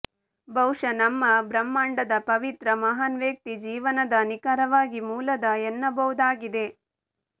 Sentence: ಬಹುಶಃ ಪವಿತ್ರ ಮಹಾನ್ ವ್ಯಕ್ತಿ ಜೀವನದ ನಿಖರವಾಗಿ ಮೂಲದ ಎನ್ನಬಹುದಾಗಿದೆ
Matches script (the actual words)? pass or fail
fail